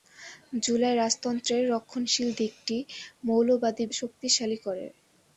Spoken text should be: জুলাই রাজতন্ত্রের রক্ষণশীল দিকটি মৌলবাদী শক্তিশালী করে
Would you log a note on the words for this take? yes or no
no